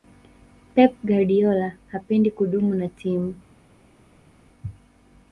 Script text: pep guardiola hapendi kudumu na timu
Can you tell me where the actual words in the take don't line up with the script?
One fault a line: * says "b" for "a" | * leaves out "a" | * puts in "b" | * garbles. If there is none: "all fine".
all fine